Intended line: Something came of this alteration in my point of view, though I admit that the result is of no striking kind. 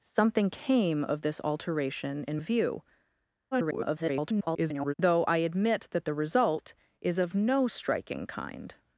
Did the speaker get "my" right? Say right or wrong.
wrong